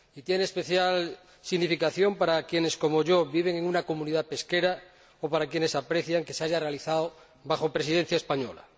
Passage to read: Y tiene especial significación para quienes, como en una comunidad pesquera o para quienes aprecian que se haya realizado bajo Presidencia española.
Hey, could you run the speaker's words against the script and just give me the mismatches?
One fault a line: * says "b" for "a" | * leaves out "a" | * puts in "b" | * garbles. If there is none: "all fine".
* puts in "yo viven"